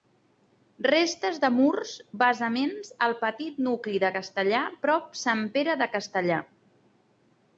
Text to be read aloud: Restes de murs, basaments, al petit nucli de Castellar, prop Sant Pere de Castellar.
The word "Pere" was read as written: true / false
true